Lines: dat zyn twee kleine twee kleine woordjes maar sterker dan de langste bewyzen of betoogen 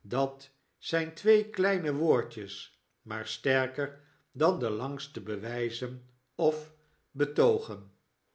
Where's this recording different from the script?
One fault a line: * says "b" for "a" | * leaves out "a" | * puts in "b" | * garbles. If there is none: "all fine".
* leaves out "twee kleine"